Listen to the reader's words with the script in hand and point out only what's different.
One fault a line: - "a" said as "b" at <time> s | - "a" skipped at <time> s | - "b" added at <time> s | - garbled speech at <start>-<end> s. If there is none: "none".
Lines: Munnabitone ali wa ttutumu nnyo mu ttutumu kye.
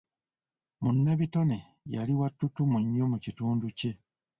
- "ali" said as "yali" at 1.9 s
- "ttutumu" said as "kitundu" at 3.2 s